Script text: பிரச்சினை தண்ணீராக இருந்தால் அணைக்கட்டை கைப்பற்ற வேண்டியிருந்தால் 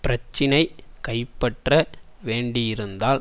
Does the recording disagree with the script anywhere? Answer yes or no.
yes